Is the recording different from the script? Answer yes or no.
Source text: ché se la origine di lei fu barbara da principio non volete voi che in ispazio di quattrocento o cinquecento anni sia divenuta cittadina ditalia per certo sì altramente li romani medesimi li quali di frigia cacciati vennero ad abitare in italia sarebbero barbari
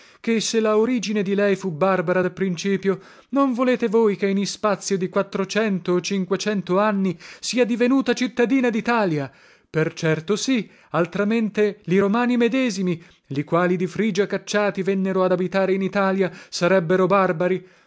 no